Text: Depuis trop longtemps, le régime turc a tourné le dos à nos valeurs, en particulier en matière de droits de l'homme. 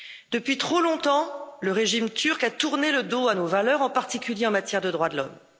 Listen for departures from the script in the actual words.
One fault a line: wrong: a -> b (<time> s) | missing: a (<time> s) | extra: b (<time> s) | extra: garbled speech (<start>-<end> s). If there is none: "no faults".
no faults